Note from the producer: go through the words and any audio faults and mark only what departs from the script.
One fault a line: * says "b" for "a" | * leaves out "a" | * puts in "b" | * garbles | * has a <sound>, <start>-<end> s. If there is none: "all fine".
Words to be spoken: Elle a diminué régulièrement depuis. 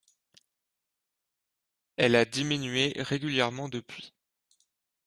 all fine